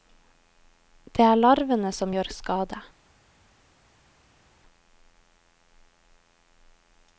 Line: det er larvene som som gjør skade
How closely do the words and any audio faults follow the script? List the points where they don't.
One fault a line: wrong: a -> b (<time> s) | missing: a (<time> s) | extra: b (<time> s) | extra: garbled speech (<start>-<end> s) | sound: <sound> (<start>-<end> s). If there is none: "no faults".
missing: som (2.1 s)